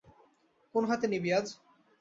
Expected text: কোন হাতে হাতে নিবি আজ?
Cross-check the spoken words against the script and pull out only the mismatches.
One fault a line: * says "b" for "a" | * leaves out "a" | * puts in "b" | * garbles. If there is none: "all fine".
* leaves out "হাতে"